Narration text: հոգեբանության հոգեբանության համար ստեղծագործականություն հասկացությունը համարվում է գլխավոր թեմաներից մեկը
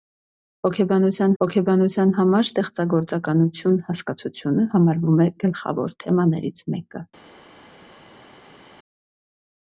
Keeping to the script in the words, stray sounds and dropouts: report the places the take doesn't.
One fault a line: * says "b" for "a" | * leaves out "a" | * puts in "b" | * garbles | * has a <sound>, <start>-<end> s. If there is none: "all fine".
all fine